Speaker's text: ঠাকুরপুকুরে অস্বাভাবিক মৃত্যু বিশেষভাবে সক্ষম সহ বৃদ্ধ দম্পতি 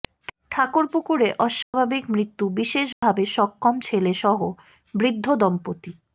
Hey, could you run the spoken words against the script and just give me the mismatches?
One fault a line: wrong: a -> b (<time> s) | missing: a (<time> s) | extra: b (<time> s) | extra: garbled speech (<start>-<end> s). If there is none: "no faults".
extra: ছেলে (3.8 s)